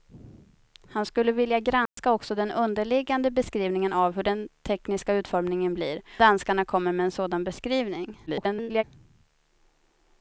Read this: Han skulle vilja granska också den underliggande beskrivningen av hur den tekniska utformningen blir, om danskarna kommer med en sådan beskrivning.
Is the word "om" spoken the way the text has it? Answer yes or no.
no